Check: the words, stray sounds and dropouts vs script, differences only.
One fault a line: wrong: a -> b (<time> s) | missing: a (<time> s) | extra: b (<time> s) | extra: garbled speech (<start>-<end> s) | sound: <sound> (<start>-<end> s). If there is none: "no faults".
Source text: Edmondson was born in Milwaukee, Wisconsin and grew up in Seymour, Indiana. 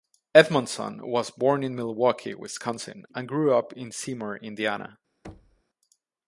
sound: thud (5.2-5.6 s)